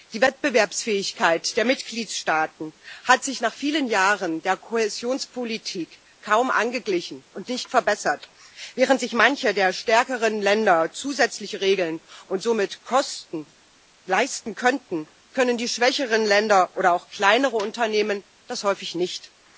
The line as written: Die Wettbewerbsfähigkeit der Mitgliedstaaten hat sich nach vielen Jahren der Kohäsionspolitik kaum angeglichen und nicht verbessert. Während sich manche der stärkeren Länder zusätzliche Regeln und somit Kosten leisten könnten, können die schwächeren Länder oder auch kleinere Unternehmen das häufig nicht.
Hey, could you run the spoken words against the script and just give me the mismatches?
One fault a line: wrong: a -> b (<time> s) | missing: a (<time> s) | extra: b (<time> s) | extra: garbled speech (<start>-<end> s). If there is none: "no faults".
no faults